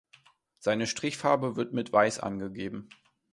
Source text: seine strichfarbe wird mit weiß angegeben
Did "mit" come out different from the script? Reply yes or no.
no